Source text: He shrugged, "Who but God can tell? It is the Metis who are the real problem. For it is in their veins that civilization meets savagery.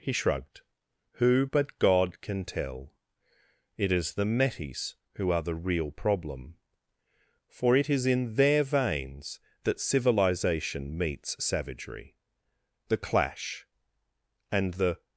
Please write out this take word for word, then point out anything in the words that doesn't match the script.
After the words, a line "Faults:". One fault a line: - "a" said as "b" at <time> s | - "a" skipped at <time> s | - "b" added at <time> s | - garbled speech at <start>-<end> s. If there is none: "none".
He shrugged, "Who but God can tell? It is the Metis who are the real problem. For it is in their veins that civilization meets savagery. The clash and the
Faults:
- "The clash and the" added at 12.9 s